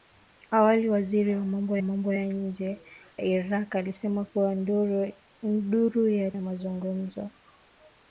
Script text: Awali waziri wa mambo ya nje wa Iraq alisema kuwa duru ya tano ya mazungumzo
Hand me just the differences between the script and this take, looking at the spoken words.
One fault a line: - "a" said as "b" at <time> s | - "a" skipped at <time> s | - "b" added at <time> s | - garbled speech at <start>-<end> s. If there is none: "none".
- "mambo" added at 1.8 s
- "wa" skipped at 2.8 s
- "tano" skipped at 6.3 s